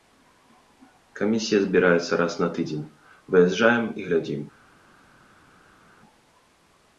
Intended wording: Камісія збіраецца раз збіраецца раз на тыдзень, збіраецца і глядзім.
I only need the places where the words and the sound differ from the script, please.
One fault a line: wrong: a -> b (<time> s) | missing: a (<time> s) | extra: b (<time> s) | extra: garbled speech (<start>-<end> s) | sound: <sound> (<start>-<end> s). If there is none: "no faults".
missing: збіраецца раз (2.3 s)
wrong: збіраецца -> выязджаем (3.3 s)